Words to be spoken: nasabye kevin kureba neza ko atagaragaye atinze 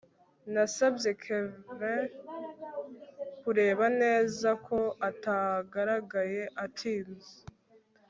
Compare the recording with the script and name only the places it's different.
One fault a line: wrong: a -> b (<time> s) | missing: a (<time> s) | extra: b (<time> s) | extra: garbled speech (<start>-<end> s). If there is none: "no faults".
no faults